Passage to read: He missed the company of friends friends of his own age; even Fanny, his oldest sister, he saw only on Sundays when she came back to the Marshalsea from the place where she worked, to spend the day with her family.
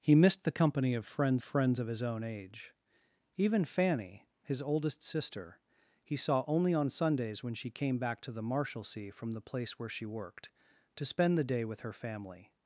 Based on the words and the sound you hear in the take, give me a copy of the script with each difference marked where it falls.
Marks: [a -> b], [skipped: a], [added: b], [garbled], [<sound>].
He missed the company of friends friends of his own age; even Fanny, his oldest sister, he saw only on Sundays when she came back to the Marshalsea from the place where she worked, to spend the day with her family.